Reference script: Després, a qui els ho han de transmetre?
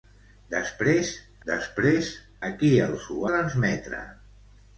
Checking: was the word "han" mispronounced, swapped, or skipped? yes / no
yes